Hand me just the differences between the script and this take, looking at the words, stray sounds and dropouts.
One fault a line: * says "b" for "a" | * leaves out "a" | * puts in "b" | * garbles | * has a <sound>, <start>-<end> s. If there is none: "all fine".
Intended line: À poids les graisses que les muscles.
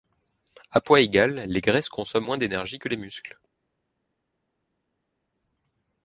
* puts in "égal"
* puts in "consomment moins d'énergie"